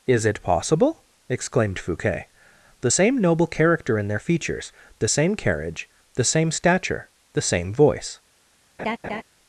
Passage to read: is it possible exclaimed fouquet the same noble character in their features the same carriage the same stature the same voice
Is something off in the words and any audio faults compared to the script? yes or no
yes